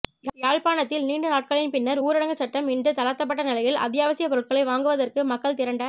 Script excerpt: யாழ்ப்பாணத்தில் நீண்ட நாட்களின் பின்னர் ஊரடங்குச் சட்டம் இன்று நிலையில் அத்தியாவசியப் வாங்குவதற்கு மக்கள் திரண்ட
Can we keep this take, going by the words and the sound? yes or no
no